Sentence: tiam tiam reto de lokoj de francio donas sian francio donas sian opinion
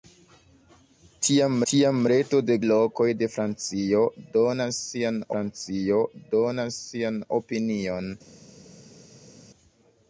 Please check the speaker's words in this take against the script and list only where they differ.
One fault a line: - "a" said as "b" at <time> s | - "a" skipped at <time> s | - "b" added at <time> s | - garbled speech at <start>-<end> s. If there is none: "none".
none